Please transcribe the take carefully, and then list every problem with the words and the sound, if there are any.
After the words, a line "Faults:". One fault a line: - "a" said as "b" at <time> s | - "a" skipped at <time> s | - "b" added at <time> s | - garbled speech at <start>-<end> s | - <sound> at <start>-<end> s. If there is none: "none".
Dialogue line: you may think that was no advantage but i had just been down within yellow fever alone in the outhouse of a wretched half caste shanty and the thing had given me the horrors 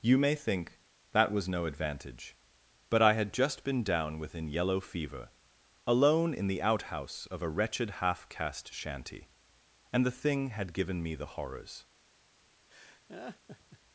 you may think that was no advantage but i had just been down within yellow fever alone in the outhouse of a wretched half caste shanty and the thing had given me the horrors
Faults:
- laugh at 12.7-13.8 s